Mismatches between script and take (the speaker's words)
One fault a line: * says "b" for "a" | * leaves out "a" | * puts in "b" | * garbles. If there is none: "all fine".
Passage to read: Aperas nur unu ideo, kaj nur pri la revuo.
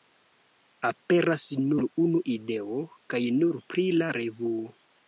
all fine